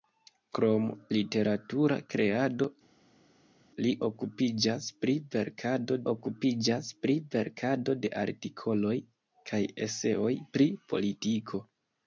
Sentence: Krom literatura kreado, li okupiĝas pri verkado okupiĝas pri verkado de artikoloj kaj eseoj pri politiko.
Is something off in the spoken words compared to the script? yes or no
no